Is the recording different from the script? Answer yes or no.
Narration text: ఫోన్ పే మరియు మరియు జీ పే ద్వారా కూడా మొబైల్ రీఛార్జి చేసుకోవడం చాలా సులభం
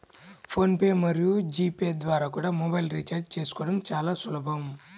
yes